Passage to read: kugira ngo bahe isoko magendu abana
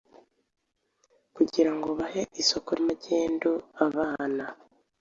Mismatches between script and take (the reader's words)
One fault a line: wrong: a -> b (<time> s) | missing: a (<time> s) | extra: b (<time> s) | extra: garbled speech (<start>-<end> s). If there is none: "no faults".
no faults